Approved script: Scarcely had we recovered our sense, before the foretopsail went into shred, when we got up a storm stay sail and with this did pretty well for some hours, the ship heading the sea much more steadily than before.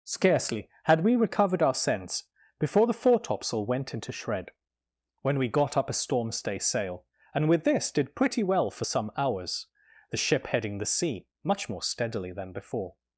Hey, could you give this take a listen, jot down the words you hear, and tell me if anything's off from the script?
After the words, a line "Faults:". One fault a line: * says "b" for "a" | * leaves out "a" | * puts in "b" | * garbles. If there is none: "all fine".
Scarcely had we recovered our sense, before the foretopsail went into shred, when we got up a storm stay sail and with this did pretty well for some hours, the ship heading the sea much more steadily than before.
Faults:
all fine